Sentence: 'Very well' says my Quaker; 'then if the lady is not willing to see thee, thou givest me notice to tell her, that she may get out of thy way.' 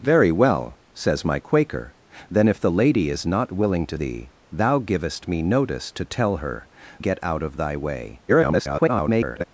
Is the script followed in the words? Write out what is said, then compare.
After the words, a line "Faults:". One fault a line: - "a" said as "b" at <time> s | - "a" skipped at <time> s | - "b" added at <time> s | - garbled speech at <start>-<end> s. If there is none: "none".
'Very well' says my Quaker; 'then if the lady is not willing to thee, thou givest me notice to tell her, get out of thy way.' [garbled]
Faults:
- "see" skipped at 4.0 s
- "that she may" skipped at 6.7 s
- garbled speech at 8.3-9.4 s